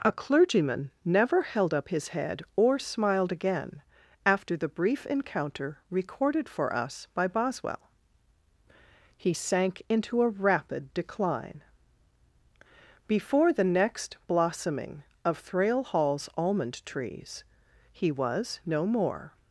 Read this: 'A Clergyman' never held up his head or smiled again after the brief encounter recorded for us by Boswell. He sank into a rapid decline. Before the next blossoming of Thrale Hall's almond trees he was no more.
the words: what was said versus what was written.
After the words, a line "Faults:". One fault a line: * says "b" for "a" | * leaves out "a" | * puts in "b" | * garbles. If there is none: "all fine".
'A Clergyman' never held up his head or smiled again after the brief encounter recorded for us by Boswell. He sank into a rapid decline. Before the next blossoming of Thrale Hall's almond trees he was no more.
Faults:
all fine